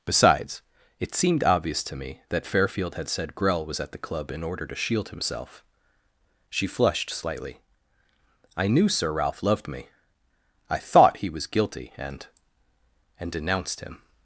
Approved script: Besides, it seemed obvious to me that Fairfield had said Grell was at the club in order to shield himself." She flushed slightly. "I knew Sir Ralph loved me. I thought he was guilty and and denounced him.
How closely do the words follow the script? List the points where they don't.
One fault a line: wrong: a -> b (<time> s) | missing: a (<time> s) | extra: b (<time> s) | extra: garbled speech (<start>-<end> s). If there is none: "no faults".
no faults